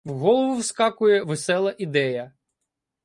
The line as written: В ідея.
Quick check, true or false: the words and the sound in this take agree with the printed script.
false